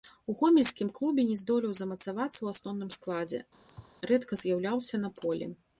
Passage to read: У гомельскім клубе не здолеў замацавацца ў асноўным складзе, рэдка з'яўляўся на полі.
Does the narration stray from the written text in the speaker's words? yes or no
no